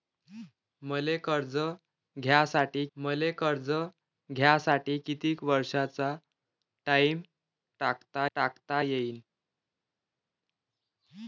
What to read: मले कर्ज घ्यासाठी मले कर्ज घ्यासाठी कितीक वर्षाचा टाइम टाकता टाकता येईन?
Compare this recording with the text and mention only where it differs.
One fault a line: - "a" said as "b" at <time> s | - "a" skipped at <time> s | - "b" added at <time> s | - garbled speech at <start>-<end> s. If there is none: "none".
none